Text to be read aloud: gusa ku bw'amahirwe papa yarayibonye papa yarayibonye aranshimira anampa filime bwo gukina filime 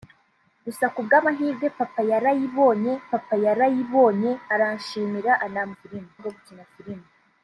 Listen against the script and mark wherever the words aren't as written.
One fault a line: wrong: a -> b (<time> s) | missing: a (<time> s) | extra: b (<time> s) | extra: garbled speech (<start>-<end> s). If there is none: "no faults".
no faults